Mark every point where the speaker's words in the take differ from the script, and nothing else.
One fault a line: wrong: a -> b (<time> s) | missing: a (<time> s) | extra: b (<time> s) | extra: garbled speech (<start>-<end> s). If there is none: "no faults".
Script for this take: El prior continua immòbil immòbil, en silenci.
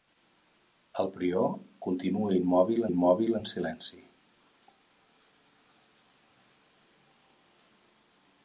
no faults